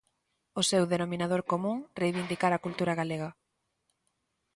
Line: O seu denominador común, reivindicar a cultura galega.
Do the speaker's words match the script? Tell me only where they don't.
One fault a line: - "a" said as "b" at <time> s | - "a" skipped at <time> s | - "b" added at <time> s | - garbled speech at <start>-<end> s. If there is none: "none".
none